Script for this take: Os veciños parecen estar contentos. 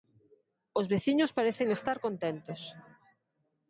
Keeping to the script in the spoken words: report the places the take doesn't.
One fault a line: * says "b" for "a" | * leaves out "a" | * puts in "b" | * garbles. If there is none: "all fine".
all fine